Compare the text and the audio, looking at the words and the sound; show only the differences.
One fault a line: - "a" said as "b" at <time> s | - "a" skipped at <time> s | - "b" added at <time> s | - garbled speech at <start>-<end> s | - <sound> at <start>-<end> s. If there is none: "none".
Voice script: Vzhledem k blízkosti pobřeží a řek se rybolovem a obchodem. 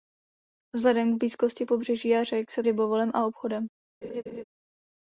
- laugh at 4.0-4.4 s